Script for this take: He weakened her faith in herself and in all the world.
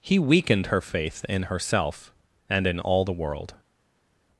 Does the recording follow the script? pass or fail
pass